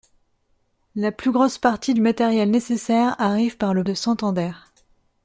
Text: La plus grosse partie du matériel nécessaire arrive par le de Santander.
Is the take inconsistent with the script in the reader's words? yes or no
no